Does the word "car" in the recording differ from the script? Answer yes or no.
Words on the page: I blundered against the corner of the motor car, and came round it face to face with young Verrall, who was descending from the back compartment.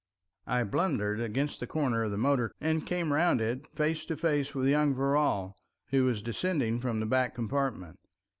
yes